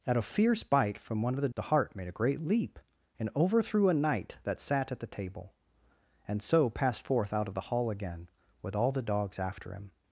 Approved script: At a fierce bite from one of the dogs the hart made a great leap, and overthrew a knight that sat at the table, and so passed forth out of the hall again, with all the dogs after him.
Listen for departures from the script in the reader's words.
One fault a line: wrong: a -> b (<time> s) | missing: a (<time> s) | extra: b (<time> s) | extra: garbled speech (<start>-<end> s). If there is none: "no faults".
missing: dogs (1.5 s)